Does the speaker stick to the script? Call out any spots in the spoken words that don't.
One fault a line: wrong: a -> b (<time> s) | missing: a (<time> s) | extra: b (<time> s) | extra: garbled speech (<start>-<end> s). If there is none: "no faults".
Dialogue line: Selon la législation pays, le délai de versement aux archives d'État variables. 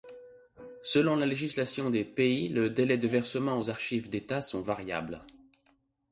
extra: des (1.9 s)
extra: sont (4.4 s)